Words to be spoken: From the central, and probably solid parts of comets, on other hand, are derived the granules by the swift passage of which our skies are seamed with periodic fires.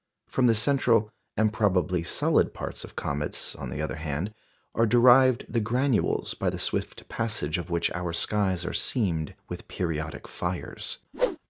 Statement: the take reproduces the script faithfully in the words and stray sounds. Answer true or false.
false